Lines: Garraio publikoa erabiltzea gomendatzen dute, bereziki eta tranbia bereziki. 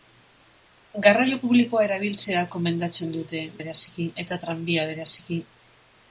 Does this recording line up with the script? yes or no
yes